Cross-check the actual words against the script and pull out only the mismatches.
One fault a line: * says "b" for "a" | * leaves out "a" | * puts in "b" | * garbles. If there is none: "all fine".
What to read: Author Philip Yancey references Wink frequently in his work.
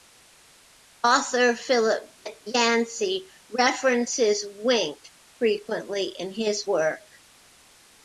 all fine